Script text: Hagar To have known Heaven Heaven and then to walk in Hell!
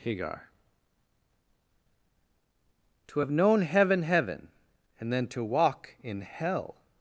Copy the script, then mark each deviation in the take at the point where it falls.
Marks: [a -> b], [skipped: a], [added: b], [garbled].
Hagar To have known Heaven Heaven and then to walk in Hell!